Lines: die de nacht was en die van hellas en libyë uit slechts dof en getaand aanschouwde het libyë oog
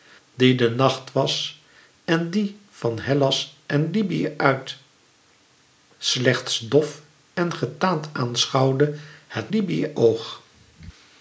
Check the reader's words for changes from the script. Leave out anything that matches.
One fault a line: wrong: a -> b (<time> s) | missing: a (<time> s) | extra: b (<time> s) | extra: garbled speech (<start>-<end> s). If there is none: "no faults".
no faults